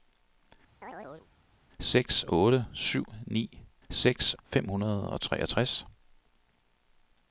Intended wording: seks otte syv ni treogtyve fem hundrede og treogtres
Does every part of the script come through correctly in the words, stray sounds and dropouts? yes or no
no